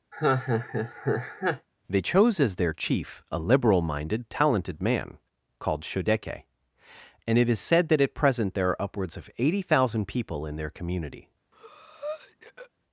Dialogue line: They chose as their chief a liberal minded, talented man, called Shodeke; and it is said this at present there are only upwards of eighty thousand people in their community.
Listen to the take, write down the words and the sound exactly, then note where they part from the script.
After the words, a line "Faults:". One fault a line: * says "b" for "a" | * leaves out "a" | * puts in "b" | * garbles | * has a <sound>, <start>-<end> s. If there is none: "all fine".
They chose as their chief a liberal minded, talented man, called Shodeke; and it is said that at present there are upwards of eighty thousand people in their community.
Faults:
* has a laugh, 0.1-1.7 s
* says "that" for "this"
* leaves out "only"
* has a breath, 11.5-12.7 s